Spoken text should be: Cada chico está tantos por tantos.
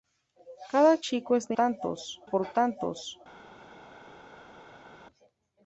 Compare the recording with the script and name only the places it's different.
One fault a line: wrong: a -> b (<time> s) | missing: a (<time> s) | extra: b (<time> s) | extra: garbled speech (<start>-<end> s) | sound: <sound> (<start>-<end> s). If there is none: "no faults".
no faults